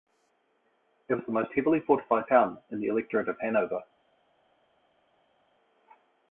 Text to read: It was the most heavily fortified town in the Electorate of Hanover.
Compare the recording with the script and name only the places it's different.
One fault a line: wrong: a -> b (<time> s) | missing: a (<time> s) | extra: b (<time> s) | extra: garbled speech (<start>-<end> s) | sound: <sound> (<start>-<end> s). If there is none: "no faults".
no faults